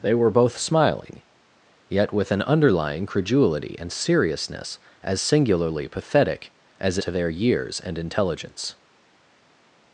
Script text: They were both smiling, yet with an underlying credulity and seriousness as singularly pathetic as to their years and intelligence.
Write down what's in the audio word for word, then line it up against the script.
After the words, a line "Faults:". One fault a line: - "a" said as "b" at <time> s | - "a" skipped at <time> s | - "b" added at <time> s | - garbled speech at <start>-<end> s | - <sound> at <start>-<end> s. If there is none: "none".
They were both smiling, yet with an underlying credulity and seriousness as singularly pathetic as to their years and intelligence.
Faults:
none